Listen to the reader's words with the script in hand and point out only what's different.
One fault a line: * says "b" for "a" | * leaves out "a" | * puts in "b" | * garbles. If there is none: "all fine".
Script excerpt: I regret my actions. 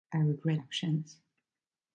* leaves out "my"